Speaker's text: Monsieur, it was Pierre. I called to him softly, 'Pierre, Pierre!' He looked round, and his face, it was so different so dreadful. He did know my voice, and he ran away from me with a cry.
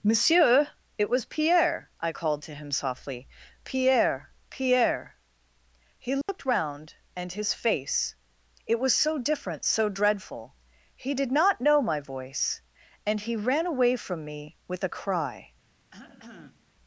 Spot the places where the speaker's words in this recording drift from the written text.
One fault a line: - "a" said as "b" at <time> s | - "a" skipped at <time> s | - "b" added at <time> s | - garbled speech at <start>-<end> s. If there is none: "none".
- "not" added at 11.3 s